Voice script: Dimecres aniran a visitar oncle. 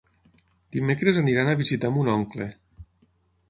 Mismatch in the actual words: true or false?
true